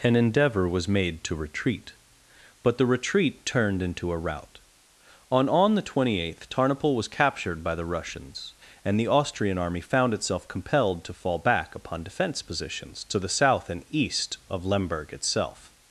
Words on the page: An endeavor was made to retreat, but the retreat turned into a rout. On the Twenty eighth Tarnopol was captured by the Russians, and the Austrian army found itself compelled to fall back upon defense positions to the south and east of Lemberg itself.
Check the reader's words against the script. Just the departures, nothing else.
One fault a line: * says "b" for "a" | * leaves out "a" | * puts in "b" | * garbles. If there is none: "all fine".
* puts in "On"